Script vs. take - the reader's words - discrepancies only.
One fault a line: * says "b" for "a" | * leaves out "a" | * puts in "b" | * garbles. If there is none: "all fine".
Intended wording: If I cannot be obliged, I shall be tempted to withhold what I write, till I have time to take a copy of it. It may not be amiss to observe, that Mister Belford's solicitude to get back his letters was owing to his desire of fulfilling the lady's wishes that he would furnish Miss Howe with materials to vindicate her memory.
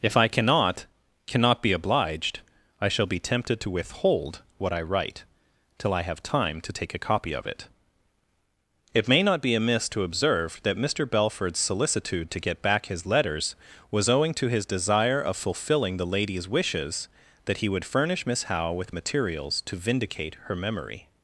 * puts in "cannot"